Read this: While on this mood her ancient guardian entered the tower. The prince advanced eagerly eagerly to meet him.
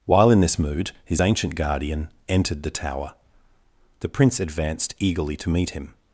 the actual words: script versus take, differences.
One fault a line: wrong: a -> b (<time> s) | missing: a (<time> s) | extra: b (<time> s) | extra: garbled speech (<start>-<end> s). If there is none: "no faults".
wrong: on -> in (0.3 s)
wrong: her -> his (1.1 s)
missing: eagerly (5.4 s)